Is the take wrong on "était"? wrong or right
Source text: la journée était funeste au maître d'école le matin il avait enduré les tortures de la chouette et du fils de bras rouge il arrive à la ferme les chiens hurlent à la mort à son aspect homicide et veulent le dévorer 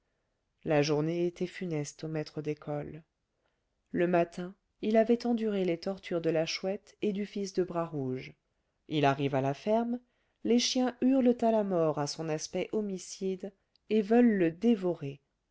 right